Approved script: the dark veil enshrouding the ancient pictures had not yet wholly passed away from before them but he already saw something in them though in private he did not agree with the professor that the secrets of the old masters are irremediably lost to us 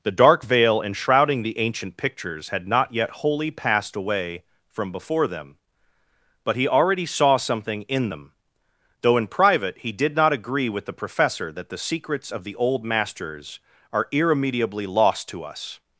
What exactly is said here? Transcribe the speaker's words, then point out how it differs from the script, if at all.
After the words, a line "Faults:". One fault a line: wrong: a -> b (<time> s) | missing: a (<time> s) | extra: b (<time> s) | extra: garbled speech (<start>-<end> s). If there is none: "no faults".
the dark veil enshrouding the ancient pictures had not yet wholly passed away from before them but he already saw something in them though in private he did not agree with the professor that the secrets of the old masters are irremediably lost to us
Faults:
no faults